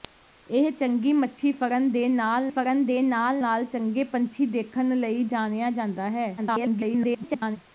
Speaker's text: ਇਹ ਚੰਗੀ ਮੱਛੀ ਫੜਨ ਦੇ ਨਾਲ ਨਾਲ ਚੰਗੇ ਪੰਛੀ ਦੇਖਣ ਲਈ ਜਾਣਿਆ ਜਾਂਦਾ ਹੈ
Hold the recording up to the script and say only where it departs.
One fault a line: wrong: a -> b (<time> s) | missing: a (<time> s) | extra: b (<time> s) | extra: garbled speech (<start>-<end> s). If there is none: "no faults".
extra: ਫੜਨ ਦੇ ਨਾਲ (2.5 s)
extra: garbled speech (6.4-7.6 s)